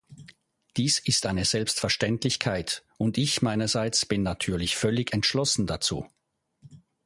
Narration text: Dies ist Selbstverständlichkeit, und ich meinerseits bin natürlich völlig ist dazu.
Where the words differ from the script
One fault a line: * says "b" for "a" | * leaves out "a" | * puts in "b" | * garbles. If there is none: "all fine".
* puts in "eine"
* says "entschlossen" for "ist"